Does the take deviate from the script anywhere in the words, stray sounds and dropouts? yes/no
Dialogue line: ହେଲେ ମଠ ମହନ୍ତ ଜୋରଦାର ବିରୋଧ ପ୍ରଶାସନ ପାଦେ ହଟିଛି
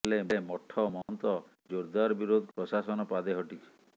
yes